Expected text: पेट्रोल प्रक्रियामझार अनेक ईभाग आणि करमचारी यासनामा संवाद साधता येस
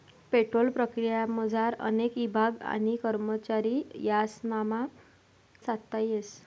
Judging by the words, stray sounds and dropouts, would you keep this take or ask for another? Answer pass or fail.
fail